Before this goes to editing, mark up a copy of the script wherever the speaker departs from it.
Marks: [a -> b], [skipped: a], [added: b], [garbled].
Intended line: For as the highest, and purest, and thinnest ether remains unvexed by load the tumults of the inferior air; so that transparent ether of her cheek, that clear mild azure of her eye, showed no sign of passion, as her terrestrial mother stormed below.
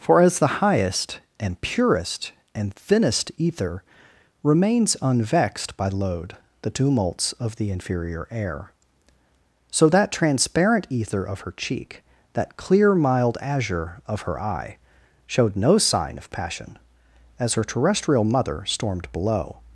For as the highest, and purest, and thinnest ether remains unvexed by load the tumults of the inferior air; so that transparent ether of her cheek, that clear mild azure of her eye, showed no sign of passion, as her terrestrial mother stormed below.